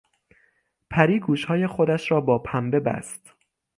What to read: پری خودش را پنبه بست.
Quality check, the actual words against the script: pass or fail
fail